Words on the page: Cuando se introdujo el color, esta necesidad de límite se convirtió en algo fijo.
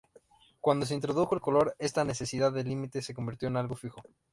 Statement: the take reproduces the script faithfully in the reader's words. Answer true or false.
true